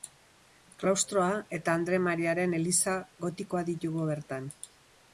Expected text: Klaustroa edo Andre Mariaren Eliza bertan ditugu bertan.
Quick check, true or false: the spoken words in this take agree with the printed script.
false